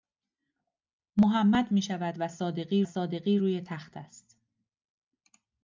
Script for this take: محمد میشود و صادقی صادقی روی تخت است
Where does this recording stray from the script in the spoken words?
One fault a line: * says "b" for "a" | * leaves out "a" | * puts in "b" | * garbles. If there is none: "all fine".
all fine